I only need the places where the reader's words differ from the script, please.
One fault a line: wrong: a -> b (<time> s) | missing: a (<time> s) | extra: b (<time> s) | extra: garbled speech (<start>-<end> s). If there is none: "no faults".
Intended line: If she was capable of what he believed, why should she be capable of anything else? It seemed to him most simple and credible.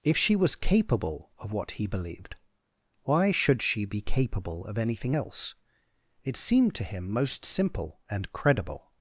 no faults